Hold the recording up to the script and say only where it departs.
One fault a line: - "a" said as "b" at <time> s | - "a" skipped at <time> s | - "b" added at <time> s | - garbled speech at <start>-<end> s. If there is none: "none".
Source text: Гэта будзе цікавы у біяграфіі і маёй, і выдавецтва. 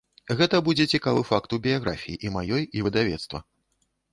- "факт" added at 1.3 s